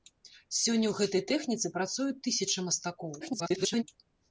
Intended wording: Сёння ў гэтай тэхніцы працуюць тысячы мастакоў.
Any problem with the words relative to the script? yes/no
yes